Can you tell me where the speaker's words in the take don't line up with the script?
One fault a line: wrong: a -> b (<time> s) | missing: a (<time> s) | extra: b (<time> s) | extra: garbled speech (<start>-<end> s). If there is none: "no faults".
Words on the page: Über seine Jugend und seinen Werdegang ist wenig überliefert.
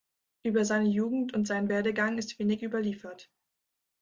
no faults